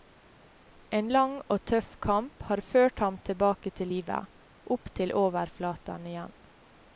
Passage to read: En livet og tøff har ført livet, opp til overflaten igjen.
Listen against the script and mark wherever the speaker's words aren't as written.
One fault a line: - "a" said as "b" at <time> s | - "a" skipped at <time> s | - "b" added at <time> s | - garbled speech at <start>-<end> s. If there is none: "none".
- "livet" said as "lang" at 1.1 s
- "kamp" added at 2.1 s
- "ham tilbake til" added at 3.0 s